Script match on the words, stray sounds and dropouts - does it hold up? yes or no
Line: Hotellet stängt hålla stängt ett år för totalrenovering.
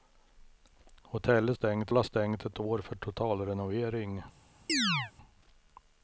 no